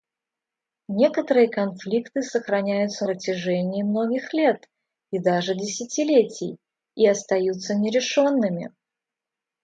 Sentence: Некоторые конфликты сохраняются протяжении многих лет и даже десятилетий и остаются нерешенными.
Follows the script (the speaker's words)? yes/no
yes